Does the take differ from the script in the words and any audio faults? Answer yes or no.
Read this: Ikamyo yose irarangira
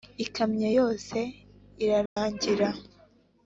yes